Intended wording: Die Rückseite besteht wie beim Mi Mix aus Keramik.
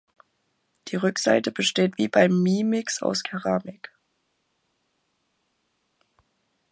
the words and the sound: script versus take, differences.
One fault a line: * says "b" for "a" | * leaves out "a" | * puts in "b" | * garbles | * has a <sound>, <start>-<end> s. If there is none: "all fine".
all fine